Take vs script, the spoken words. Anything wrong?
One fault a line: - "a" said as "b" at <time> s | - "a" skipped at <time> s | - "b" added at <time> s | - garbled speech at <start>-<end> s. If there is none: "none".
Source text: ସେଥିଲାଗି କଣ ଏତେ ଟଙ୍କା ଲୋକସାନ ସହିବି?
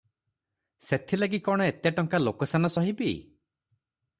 none